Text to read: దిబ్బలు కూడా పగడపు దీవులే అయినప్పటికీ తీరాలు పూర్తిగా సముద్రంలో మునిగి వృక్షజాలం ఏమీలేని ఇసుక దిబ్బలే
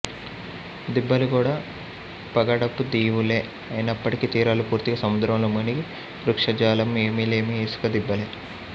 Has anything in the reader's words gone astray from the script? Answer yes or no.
no